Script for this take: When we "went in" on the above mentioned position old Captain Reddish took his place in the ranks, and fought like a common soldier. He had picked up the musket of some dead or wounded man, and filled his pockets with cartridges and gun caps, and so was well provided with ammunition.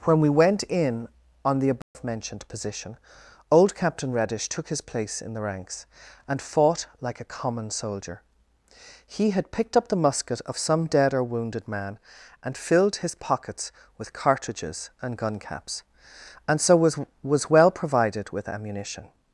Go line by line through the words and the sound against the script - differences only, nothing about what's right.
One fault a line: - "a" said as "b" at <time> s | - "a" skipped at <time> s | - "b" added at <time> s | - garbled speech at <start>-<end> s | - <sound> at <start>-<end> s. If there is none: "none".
- dropout at 1.8-1.9 s
- "was" added at 17.2 s